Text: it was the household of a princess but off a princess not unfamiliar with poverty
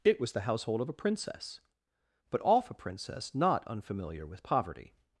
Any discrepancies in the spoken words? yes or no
no